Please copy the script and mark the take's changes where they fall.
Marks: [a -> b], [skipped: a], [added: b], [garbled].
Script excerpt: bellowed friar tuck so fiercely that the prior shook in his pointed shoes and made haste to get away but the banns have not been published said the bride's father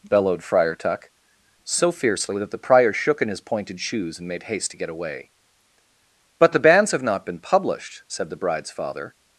bellowed friar tuck so fiercely that the prior shook in his pointed shoes and made haste to get away but the banns have not been published said the bride's father